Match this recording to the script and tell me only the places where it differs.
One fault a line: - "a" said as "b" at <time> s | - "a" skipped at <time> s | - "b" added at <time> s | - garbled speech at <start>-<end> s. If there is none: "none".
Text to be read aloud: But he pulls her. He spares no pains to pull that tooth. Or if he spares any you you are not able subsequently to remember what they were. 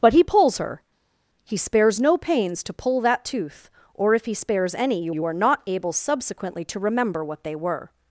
none